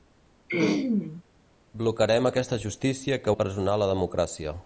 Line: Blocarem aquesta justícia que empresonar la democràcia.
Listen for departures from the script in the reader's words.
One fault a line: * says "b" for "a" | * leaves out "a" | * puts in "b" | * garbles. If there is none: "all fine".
all fine